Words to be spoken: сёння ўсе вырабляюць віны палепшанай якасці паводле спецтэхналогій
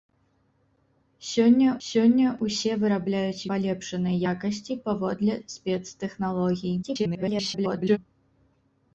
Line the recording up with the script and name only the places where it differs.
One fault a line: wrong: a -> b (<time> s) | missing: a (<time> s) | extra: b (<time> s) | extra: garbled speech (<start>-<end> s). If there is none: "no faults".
extra: сёння (1.9 s)
missing: віны (3.5 s)
extra: garbled speech (6.8-8.0 s)